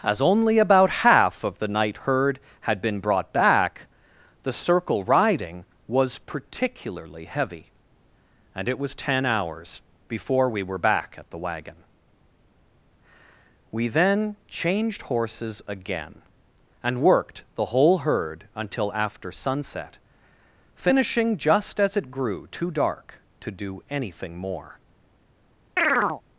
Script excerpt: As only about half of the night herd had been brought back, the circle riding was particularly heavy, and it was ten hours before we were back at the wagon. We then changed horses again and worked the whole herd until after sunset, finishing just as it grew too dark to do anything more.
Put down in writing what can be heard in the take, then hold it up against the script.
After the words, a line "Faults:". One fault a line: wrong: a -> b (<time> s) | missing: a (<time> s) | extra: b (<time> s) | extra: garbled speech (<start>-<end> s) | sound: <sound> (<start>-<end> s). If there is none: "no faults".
As only about half of the night herd had been brought back, the circle riding was particularly heavy, and it was ten hours before we were back at the wagon. We then changed horses again and worked the whole herd until after sunset, finishing just as it grew too dark to do anything more.
Faults:
sound: chirp (25.8-26.2 s)